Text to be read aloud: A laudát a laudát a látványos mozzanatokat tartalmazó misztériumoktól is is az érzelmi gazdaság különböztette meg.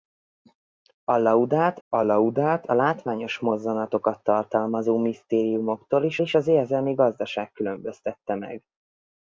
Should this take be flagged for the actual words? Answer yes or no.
no